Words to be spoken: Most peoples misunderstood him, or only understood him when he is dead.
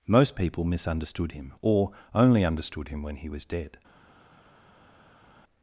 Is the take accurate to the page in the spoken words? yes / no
no